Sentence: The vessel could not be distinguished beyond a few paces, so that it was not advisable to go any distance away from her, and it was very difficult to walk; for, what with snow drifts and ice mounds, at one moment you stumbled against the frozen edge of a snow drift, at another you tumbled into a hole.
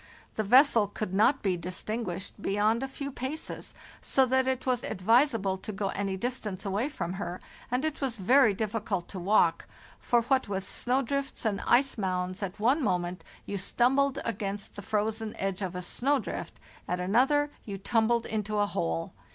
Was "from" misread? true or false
false